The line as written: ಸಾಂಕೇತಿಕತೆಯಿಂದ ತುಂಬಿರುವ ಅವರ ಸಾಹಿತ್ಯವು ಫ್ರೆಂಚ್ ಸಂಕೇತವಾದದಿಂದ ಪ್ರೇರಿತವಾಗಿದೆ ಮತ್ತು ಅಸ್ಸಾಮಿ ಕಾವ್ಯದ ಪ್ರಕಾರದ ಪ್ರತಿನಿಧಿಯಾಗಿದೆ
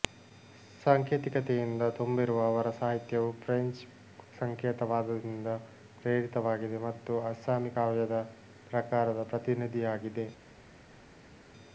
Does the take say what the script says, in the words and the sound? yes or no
yes